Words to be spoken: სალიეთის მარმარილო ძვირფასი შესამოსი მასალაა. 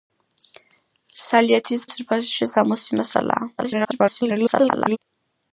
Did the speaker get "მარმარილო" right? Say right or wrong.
wrong